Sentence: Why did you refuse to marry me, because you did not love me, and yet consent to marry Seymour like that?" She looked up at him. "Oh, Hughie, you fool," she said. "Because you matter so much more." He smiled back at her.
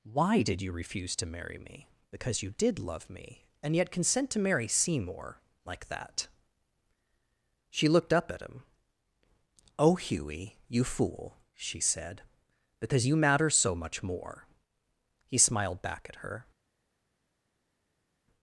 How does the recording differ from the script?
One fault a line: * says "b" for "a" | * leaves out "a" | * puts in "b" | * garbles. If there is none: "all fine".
* leaves out "not"